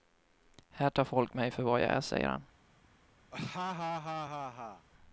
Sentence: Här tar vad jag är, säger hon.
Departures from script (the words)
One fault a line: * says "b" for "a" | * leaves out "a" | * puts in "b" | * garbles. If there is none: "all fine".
* puts in "folk mig för"
* says "han" for "hon"